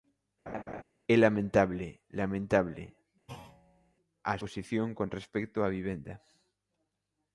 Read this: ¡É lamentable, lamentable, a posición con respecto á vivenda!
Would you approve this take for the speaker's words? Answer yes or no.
yes